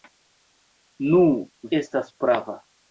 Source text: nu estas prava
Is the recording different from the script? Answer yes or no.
no